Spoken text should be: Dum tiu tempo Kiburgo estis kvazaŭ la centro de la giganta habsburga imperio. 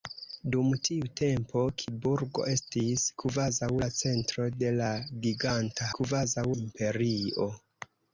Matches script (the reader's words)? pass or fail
fail